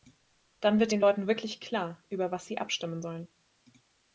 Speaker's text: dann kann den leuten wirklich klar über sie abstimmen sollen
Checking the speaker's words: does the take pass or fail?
fail